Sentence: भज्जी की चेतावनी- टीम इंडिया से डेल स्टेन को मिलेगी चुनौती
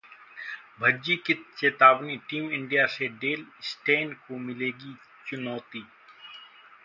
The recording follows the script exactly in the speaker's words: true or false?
true